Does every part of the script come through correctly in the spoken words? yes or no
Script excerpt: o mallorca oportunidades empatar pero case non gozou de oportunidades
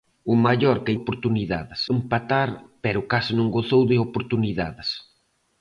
yes